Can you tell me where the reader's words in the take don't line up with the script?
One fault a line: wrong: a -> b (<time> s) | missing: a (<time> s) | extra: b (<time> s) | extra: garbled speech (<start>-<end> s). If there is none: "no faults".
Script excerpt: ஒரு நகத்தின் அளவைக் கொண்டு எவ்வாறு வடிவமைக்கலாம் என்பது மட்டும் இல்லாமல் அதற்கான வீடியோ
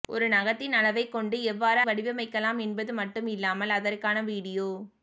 no faults